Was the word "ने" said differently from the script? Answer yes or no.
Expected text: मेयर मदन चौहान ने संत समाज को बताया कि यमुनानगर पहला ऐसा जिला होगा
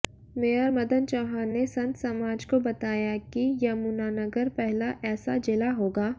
no